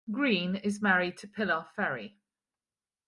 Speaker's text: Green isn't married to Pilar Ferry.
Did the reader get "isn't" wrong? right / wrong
wrong